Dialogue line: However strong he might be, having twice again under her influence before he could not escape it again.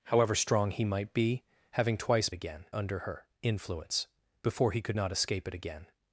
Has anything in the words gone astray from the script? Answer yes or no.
no